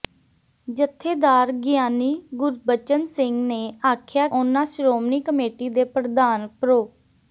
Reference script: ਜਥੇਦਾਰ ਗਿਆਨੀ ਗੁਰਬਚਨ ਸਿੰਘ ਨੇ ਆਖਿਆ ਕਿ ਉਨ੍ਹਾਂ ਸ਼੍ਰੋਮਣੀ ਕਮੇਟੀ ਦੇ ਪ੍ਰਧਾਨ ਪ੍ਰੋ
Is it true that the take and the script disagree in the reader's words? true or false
true